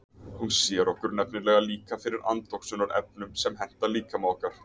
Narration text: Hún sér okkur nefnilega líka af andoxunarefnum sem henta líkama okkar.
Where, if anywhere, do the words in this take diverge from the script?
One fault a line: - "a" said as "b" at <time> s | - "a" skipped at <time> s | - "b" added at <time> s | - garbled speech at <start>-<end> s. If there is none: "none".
- "af" said as "fyrir" at 2.0 s